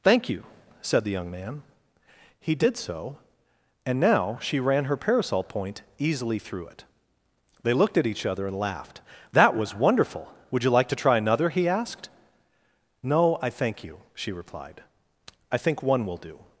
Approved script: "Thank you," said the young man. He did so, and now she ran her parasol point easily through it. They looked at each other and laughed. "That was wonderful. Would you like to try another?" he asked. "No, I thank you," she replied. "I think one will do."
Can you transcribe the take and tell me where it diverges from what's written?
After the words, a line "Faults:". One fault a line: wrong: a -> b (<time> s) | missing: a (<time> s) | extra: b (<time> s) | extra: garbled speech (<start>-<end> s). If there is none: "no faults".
"Thank you," said the young man. He did so, and now she ran her parasol point easily through it. They looked at each other and laughed. "That was wonderful. Would you like to try another?" he asked. "No, I thank you," she replied. "I think one will do."
Faults:
no faults